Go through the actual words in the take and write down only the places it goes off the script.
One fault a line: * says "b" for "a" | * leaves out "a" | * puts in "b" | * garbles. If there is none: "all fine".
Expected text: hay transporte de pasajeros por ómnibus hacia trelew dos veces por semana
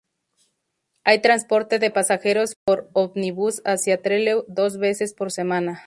all fine